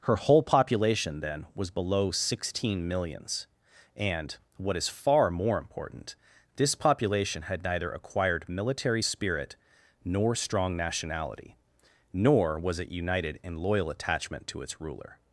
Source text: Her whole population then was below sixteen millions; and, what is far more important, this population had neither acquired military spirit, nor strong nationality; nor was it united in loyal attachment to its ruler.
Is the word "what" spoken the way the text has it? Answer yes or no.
yes